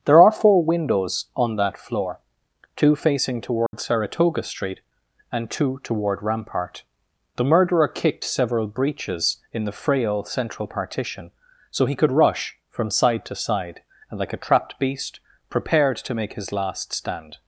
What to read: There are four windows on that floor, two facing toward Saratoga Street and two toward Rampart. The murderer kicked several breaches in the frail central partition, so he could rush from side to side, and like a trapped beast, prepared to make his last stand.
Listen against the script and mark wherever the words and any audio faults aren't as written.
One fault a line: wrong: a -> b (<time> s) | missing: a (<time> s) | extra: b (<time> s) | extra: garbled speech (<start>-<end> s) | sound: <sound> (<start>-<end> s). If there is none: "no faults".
sound: dropout (3.7-3.7 s)